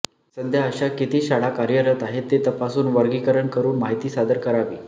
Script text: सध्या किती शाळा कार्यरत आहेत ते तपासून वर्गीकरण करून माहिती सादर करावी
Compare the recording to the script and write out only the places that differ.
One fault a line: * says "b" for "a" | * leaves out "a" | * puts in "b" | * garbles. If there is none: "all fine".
* puts in "अशा"